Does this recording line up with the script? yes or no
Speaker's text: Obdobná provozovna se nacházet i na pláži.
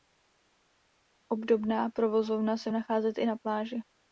yes